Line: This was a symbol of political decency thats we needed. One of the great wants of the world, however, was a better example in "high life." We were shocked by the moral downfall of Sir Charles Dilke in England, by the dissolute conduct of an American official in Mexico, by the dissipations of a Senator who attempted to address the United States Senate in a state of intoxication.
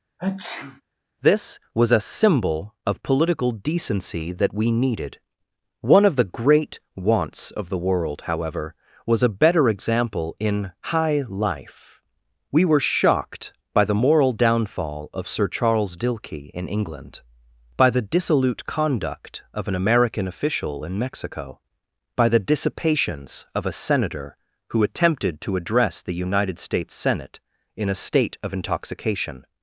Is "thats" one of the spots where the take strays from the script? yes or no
yes